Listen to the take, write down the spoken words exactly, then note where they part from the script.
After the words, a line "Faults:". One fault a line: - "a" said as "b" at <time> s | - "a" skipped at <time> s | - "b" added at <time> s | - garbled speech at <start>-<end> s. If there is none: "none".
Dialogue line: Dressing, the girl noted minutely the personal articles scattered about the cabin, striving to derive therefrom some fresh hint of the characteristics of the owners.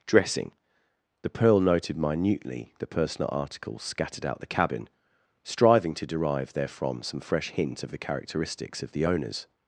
Dressing, the pearl noted minutely the personal articles scattered out the cabin, striving to derive therefrom some fresh hint of the characteristics of the owners.
Faults:
- "girl" said as "pearl" at 1.3 s
- "about" said as "out" at 4.2 s